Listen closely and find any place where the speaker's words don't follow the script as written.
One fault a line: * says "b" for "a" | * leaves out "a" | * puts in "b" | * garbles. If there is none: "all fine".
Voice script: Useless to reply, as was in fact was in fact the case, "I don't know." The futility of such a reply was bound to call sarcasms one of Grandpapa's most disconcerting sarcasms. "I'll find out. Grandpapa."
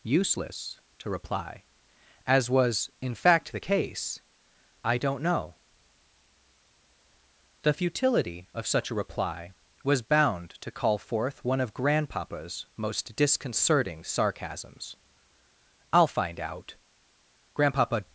* leaves out "was in fact"
* says "forth" for "sarcasms"